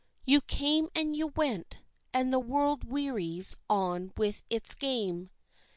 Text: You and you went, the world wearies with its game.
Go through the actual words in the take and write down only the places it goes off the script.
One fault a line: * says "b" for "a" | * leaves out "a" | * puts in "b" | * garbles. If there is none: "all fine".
* puts in "came"
* puts in "and"
* puts in "on"